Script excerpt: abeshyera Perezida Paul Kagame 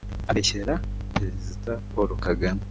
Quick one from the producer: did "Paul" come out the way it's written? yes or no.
yes